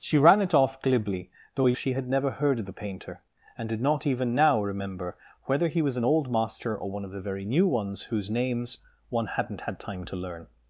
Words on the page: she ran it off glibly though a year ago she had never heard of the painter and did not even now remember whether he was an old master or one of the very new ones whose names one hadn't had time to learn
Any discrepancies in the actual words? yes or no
yes